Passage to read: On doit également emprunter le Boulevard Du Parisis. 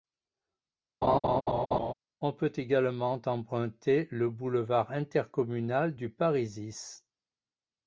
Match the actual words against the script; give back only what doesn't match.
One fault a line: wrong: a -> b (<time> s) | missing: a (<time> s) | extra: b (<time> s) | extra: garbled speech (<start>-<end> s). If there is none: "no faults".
wrong: doit -> peut (2.3 s)
extra: Intercommunal (4.9 s)